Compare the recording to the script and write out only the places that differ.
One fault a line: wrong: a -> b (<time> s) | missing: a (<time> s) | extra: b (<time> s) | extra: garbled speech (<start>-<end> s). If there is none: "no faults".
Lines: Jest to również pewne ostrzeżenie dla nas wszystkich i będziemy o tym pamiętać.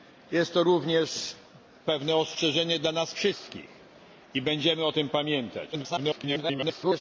extra: garbled speech (5.7-7.0 s)